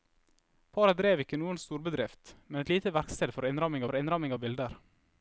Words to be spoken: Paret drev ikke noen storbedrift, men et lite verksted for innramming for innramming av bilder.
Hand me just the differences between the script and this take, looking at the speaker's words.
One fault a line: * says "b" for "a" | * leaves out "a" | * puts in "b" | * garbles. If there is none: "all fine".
all fine